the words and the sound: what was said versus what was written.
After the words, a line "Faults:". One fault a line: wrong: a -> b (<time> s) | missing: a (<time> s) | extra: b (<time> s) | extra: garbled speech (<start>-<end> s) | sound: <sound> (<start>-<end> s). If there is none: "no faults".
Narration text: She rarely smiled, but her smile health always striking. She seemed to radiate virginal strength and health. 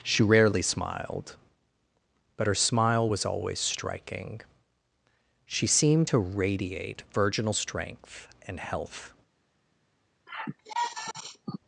She rarely smiled, but her smile was always striking. She seemed to radiate virginal strength and health.
Faults:
wrong: health -> was (3.0 s)
sound: sigh (10.3-11.6 s)